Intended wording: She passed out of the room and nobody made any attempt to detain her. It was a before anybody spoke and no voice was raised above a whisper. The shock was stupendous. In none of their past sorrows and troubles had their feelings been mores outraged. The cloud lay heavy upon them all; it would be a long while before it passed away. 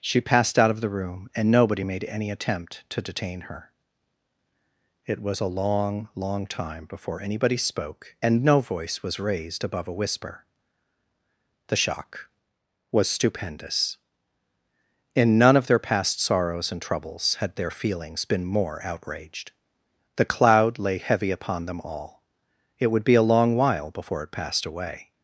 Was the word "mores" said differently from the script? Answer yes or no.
yes